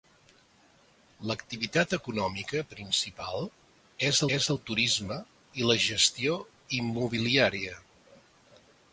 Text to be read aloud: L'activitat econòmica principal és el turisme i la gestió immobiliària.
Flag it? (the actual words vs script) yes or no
yes